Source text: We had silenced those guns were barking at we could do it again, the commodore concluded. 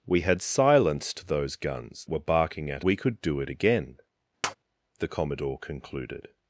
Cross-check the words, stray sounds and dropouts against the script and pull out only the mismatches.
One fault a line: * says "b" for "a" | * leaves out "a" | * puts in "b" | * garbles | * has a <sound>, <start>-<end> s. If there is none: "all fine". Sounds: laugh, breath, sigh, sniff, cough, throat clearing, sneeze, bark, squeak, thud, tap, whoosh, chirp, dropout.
* has a tap, 4.4-4.5 s